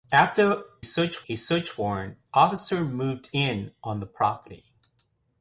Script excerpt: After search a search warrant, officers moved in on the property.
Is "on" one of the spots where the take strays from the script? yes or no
no